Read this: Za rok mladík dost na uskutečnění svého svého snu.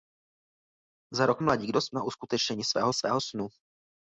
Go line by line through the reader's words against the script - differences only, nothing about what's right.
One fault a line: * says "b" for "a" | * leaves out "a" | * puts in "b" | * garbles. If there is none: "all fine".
all fine